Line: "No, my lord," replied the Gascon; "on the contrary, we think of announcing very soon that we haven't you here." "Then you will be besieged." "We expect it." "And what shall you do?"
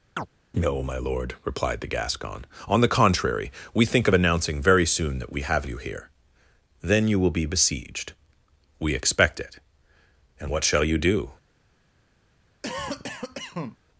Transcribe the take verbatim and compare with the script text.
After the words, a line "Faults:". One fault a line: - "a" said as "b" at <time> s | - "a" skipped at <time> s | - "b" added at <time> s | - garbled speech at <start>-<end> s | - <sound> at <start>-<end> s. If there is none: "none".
"No, my lord," replied the Gascon; "on the contrary, we think of announcing very soon that we have you here." "Then you will be besieged." "We expect it." "And what shall you do?"
Faults:
- chirp at 0.2-0.3 s
- "haven't" said as "have" at 5.4 s
- cough at 12.6-13.8 s